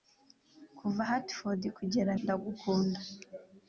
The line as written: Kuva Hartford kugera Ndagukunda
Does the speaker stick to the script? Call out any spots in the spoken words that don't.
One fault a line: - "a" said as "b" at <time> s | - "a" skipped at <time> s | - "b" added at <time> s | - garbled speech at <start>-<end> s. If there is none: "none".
none